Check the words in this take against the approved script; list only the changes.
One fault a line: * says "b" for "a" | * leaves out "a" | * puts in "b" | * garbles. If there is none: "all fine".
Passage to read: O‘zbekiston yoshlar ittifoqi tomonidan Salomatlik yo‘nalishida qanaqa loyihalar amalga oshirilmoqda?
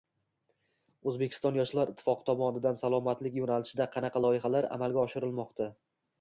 all fine